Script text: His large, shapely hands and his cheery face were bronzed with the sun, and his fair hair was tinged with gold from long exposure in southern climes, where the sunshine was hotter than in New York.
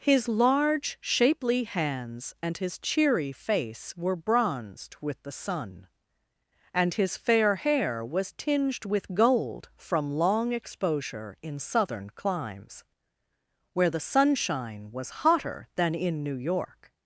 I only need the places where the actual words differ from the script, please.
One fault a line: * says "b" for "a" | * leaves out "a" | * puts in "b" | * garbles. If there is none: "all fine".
all fine